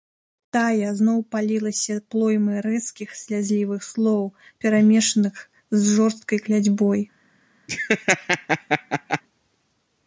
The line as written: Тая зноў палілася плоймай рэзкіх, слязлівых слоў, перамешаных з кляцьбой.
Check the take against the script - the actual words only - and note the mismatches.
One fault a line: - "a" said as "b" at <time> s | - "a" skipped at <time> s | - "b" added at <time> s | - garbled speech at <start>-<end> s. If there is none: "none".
- "жорсткай" added at 6.0 s